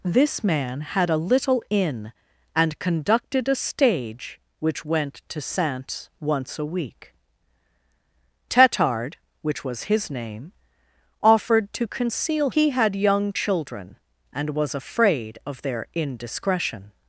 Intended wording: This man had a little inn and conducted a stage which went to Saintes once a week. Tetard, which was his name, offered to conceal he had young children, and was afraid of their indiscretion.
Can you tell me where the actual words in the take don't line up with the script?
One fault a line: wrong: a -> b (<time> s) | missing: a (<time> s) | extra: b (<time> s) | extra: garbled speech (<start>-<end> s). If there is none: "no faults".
no faults